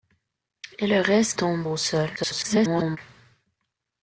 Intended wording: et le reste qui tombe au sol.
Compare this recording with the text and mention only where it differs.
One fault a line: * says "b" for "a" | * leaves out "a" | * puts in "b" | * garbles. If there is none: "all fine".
* leaves out "qui"
* garbles